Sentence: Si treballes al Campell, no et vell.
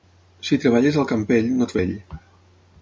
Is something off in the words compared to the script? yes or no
no